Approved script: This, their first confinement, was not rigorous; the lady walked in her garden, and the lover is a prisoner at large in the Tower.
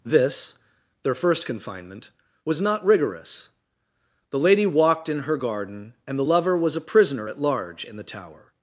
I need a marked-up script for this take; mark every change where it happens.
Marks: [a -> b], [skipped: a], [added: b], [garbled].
This, their first confinement, was not rigorous; the lady walked in her garden, and the lover [is -> was] a prisoner at large in the Tower.